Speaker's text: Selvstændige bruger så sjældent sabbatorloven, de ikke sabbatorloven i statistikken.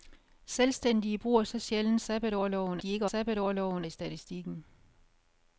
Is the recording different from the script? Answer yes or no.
no